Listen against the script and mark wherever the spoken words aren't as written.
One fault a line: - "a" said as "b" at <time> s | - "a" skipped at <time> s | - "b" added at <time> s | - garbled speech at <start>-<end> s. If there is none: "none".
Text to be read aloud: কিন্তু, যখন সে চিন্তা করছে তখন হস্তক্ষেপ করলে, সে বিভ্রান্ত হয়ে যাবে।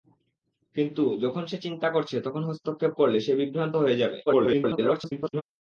- garbled speech at 4.3-5.4 s